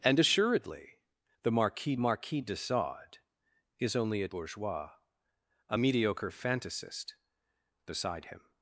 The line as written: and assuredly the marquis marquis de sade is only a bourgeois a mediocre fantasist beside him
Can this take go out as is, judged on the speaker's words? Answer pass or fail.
pass